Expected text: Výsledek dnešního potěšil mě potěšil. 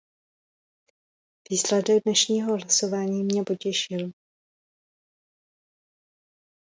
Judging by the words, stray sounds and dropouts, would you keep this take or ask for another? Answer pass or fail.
fail